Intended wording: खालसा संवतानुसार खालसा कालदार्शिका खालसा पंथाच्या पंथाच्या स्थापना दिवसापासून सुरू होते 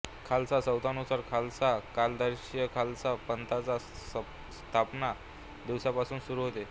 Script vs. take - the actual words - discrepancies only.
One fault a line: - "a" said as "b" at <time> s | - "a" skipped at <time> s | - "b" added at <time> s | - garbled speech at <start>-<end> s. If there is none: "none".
- "पंथाच्या" skipped at 3.8 s